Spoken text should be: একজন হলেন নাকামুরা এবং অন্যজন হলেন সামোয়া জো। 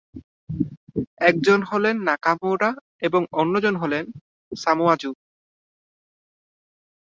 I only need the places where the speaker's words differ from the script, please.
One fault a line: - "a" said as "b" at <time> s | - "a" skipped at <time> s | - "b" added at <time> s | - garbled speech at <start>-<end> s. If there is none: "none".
none